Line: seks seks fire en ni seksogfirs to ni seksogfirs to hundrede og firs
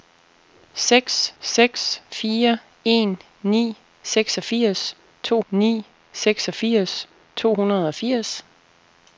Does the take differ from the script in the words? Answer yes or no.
no